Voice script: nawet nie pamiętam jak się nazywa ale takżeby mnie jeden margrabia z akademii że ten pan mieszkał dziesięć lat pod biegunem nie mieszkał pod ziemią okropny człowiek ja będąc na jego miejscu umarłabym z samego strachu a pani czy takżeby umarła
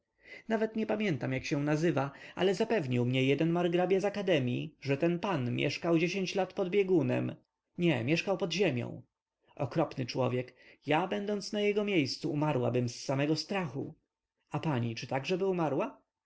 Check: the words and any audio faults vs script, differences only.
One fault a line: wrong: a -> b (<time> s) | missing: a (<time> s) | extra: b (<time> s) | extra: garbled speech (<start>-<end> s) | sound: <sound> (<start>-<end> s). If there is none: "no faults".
wrong: takżeby -> zapewnił (2.5 s)